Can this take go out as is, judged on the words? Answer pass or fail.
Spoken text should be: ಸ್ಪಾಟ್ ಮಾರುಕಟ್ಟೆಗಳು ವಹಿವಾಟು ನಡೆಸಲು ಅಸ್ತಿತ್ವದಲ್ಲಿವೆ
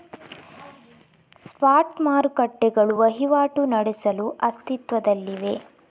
pass